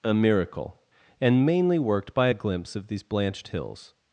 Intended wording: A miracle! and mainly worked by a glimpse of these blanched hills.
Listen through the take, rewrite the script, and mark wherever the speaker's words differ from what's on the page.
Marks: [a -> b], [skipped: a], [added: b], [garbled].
A miracle! and mainly worked by a glimpse of these blanched hills.